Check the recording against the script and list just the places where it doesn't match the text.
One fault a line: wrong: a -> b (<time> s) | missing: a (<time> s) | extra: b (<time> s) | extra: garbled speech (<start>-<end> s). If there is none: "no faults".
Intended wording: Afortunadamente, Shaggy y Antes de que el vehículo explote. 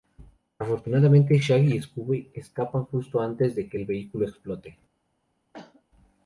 extra: Scooby escapan justo (1.8 s)